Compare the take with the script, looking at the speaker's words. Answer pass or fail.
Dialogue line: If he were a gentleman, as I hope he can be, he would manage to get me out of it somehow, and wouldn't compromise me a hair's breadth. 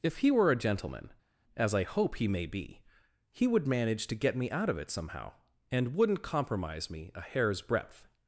fail